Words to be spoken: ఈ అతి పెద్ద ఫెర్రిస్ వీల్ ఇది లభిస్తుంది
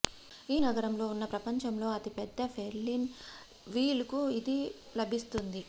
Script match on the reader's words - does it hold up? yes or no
no